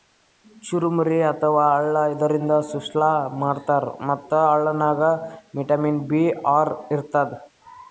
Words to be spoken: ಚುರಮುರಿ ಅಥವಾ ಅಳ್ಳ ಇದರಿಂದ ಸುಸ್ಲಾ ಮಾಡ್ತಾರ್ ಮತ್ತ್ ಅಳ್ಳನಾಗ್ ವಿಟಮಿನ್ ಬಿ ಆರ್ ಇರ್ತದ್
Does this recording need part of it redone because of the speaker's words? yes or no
no